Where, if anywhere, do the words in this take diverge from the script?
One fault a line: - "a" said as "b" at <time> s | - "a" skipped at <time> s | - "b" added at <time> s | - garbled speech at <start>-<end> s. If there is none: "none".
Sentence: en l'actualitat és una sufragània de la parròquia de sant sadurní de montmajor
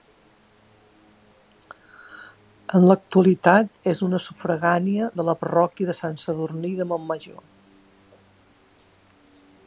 none